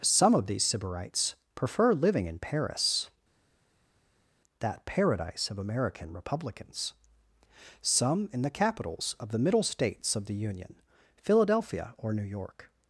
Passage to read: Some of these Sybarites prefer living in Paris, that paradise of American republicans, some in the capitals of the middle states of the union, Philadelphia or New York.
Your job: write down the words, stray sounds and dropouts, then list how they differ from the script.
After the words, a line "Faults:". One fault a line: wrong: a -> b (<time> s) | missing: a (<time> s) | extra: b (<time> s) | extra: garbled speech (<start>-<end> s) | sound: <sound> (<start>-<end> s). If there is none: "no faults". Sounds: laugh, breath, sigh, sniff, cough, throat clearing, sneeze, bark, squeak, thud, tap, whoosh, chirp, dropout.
Some of these Sybarites prefer living in Paris, that paradise of American republicans, some in the capitals of the middle states of the union, Philadelphia or New York.
Faults:
no faults